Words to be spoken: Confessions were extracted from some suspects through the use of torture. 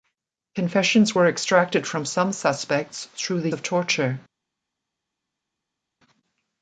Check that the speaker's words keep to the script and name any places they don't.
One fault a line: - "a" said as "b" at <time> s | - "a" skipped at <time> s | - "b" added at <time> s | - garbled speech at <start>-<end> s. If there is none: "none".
- "use" skipped at 3.5 s